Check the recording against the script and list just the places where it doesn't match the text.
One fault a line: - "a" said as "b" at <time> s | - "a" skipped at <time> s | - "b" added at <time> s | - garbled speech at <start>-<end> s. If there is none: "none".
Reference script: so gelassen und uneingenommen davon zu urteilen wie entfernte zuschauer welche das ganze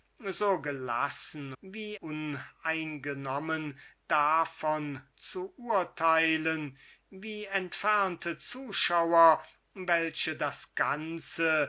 - "und" said as "wie" at 1.6 s